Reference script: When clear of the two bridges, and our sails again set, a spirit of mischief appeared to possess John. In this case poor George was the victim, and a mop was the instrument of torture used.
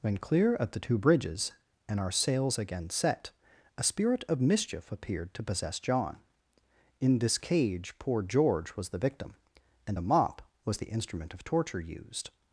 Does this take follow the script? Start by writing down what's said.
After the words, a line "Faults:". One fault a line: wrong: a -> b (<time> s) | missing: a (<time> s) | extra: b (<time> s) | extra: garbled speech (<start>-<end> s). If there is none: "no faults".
When clear of the two bridges, and our sails again set, a spirit of mischief appeared to possess John. In this cage poor George was the victim, and a mop was the instrument of torture used.
Faults:
wrong: case -> cage (7.4 s)